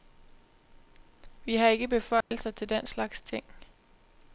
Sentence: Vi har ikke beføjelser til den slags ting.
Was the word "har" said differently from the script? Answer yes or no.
no